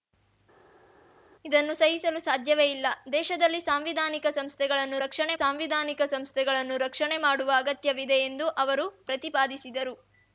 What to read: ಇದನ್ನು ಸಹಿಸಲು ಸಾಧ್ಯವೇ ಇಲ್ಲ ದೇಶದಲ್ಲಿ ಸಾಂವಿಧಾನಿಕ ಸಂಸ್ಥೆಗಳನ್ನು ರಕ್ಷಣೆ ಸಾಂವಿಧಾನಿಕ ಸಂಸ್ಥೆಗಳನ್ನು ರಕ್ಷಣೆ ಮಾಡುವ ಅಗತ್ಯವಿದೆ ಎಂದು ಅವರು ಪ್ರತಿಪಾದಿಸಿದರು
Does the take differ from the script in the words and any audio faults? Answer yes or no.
no